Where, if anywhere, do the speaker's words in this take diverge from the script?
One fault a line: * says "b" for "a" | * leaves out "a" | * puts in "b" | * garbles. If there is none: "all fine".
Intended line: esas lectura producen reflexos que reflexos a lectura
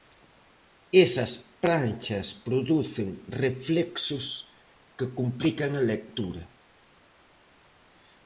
* says "pranchas" for "lectura"
* says "complican" for "reflexos"